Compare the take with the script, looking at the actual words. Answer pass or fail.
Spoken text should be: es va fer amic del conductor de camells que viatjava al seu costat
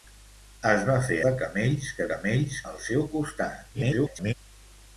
fail